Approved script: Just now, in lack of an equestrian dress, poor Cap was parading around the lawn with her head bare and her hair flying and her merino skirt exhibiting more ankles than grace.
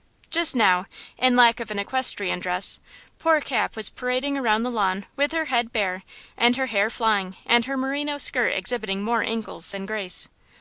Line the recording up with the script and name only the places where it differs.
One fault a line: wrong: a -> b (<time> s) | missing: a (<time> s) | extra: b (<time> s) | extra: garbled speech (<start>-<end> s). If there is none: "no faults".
no faults